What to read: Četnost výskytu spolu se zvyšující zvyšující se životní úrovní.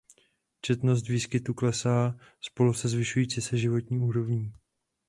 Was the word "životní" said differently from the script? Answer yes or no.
no